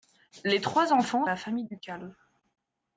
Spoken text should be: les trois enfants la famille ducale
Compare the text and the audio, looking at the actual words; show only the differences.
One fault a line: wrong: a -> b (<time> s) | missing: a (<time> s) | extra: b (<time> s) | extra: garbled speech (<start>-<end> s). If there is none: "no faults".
no faults